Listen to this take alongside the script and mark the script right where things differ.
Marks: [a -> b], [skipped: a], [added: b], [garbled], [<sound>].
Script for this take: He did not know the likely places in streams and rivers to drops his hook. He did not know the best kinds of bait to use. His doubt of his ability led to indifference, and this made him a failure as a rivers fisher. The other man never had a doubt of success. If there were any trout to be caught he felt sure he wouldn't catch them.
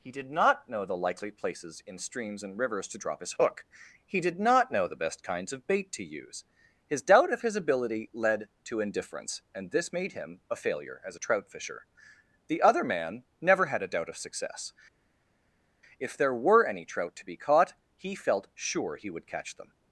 He did not know the likely places in streams and rivers to [drops -> drop] his hook. He did not know the best kinds of bait to use. His doubt of his ability led to indifference, and this made him a failure as a [rivers -> trout] fisher. The other man never had a doubt of success. If there were any trout to be caught he felt sure he [wouldn't -> would] catch them.